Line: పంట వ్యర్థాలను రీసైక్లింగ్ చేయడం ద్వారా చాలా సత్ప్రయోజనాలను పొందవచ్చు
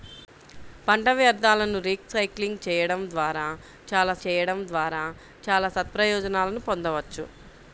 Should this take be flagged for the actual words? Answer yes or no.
yes